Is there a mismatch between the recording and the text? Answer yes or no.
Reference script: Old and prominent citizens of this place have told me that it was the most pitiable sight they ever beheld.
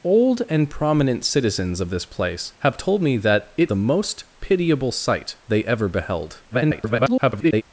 yes